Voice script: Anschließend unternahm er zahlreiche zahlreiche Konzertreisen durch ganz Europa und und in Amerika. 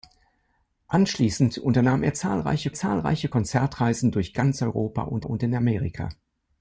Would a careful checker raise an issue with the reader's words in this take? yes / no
no